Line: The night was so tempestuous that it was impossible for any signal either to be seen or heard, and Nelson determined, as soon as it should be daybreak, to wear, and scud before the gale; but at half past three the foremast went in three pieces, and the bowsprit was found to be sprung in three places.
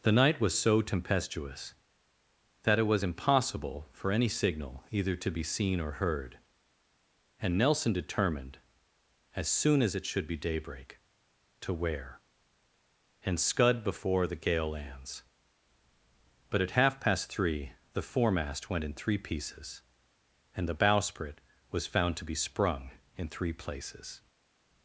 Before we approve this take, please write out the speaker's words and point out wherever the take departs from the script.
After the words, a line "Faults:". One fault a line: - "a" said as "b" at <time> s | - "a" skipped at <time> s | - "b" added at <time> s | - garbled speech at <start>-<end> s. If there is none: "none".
The night was so tempestuous that it was impossible for any signal either to be seen or heard, and Nelson determined, as soon as it should be daybreak, to wear, and scud before the gale; lands but at half past three the foremast went in three pieces, and the bowsprit was found to be sprung in three places.
Faults:
- "lands" added at 14.7 s